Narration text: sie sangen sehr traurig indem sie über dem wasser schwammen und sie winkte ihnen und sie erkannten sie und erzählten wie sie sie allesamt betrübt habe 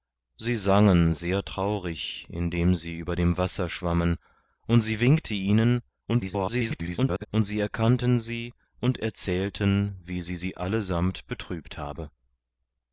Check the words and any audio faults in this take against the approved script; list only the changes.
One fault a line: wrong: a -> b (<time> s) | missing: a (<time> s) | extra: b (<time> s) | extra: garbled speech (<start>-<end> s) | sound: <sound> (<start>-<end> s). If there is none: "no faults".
extra: garbled speech (6.1-7.3 s)